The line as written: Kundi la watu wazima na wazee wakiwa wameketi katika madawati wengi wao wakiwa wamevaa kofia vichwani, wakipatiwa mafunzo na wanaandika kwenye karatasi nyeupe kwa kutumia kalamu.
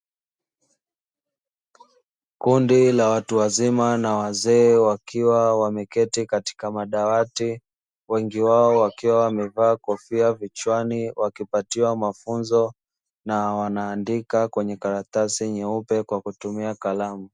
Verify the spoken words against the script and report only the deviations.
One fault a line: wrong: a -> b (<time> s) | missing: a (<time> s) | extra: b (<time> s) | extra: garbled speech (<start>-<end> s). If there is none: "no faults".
no faults